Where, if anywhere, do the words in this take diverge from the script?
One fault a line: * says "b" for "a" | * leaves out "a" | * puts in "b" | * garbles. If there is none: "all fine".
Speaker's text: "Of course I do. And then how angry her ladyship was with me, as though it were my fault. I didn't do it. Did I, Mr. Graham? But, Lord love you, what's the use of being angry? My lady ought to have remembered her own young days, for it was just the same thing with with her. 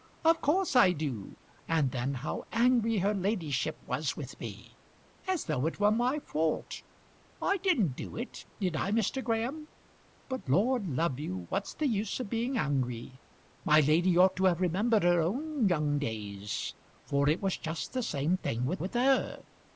all fine